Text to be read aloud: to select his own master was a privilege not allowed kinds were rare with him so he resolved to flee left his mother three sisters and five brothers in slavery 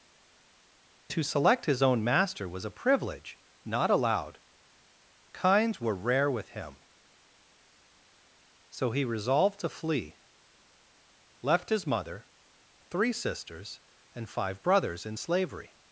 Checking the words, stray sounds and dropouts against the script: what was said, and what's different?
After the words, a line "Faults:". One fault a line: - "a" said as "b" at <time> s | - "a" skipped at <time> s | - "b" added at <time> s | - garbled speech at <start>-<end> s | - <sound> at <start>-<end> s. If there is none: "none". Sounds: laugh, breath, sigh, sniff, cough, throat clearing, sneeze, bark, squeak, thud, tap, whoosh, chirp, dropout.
to select his own master was a privilege not allowed kinds were rare with him so he resolved to flee left his mother three sisters and five brothers in slavery
Faults:
none